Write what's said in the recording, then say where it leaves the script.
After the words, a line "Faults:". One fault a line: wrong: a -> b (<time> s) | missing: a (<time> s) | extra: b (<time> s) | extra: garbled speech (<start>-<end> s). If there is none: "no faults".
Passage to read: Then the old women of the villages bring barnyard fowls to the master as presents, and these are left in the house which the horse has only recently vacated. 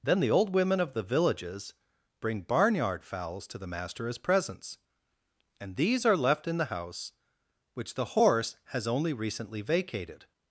Then the old women of the villages bring barnyard fowls to the master as presents, and these are left in the house which the horse has only recently vacated.
Faults:
no faults